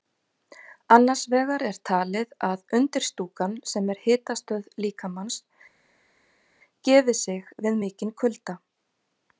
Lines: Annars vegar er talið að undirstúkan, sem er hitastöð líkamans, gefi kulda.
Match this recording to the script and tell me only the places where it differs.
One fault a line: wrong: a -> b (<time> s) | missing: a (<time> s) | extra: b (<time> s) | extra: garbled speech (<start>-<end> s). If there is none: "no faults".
extra: sig við mikinn (7.3 s)